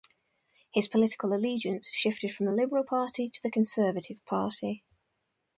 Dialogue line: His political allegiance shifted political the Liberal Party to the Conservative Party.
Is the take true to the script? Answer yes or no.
no